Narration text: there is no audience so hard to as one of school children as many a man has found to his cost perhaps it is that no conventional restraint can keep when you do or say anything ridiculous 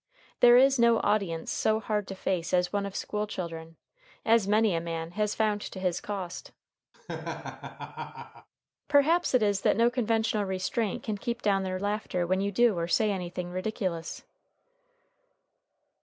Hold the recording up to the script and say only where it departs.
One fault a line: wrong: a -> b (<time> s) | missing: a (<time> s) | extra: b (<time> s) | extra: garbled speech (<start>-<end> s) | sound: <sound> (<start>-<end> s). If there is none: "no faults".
extra: face (2.1 s)
sound: laugh (6.9-8.5 s)
extra: down their laughter (11.4 s)